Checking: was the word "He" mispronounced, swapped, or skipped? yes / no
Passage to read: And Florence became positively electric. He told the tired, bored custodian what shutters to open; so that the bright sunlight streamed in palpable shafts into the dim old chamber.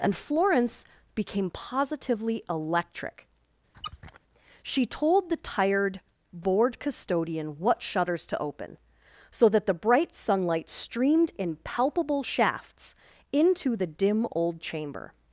yes